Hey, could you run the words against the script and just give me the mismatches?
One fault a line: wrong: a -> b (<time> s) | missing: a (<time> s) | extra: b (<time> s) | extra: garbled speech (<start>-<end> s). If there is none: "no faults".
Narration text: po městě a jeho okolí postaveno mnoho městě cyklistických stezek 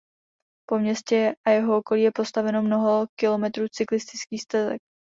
extra: je (2.0 s)
wrong: městě -> kilometrů (3.2 s)